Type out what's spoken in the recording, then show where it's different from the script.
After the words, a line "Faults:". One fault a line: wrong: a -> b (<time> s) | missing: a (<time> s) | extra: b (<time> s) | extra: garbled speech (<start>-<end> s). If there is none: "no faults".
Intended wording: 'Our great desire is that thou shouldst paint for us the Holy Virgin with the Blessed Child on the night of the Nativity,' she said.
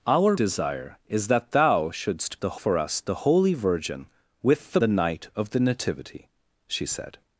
'Our desire is that thou shouldst the for us the Holy Virgin with the The night of the Nativity,' she said.
Faults:
missing: great (0.3 s)
wrong: paint -> the (2.3 s)
missing: Blessed Child on (4.8 s)